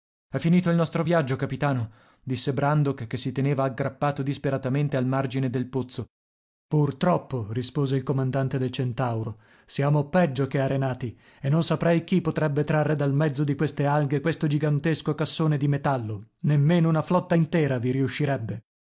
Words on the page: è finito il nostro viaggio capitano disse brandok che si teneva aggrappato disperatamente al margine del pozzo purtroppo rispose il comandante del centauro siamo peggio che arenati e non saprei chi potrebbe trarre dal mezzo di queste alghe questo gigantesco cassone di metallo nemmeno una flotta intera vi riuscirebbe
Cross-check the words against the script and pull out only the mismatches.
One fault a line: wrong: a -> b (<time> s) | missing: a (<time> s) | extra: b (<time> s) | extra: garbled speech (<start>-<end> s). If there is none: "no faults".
no faults